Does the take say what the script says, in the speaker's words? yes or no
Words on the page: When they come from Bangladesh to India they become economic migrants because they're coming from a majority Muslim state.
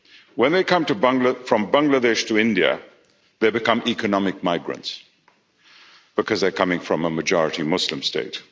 yes